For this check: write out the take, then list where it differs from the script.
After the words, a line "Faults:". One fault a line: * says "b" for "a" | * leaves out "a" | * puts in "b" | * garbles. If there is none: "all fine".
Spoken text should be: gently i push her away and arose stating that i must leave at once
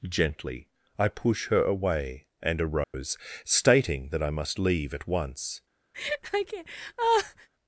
gently i push her away and arose stating that i must leave at once
Faults:
all fine